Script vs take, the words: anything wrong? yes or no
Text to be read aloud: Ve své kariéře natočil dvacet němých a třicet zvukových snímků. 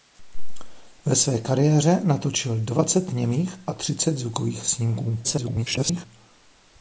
yes